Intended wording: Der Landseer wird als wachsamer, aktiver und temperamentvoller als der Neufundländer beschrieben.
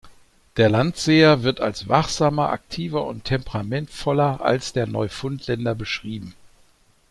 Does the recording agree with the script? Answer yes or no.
yes